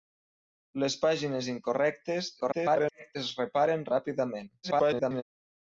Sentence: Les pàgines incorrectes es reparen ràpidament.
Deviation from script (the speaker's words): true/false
true